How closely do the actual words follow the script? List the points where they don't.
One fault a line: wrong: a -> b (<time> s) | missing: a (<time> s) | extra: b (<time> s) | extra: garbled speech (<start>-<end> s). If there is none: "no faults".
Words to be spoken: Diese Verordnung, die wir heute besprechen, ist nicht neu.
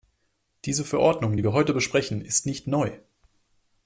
no faults